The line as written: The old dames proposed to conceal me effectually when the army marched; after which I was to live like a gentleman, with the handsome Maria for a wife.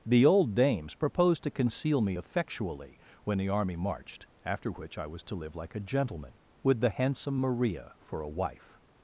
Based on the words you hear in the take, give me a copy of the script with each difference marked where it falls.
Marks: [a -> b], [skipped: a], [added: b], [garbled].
The old dames proposed to conceal me effectually when the army marched; after which I was to live like a gentleman, with the handsome Maria for a wife.